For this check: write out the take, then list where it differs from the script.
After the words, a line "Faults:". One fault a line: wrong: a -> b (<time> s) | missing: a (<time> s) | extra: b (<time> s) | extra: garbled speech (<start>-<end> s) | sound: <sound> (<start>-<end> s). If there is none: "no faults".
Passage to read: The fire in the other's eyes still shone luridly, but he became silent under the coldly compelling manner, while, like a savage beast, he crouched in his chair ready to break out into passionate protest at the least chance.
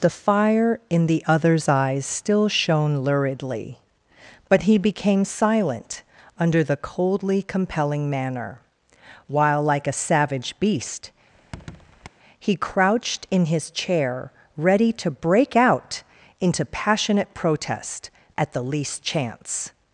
The fire in the other's eyes still shone luridly, but he became silent under the coldly compelling manner, while, like a savage beast, he crouched in his chair ready to break out into passionate protest at the least chance.
Faults:
sound: squeak (11.3-12.1 s)